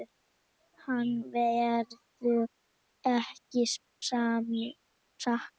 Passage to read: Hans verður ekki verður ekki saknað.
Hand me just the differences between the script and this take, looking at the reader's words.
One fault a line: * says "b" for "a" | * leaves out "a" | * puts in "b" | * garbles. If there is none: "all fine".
* leaves out "verður ekki"